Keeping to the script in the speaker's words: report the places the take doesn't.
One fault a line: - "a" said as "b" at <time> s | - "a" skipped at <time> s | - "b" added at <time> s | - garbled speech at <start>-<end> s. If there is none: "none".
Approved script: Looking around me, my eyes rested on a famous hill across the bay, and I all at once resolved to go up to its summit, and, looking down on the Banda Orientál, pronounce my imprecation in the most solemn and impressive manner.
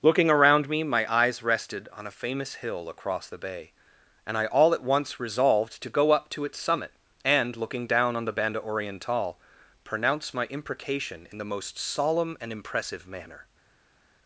none